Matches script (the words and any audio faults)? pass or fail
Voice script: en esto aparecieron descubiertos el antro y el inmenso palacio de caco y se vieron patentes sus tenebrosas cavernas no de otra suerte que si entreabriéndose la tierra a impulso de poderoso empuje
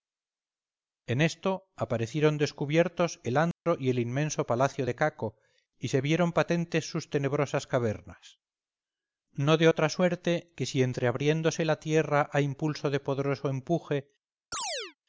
fail